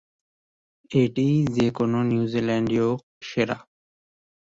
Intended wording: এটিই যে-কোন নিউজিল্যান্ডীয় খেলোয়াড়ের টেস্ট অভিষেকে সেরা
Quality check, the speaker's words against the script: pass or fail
fail